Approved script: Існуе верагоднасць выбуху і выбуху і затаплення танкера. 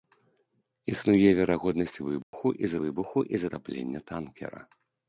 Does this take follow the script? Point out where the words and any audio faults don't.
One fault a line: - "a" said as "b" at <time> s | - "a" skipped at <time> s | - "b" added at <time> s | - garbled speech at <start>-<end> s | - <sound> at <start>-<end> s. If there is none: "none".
- dropout at 2.2-2.3 s